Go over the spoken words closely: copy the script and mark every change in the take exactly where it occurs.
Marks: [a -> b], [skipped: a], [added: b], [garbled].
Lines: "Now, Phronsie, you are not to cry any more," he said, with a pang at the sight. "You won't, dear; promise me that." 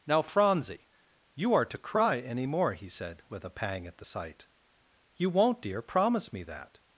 "Now, Phronsie, you are [skipped: not] to cry any more," he said, with a pang at the sight. "You won't, dear; promise me that."